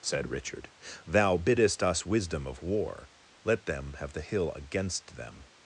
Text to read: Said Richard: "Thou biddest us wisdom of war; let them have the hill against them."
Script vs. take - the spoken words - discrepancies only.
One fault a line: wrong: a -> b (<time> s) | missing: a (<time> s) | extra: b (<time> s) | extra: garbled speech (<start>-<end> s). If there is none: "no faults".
no faults